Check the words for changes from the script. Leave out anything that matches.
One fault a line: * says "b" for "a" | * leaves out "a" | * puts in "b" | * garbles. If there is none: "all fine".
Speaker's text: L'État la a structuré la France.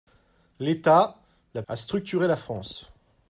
all fine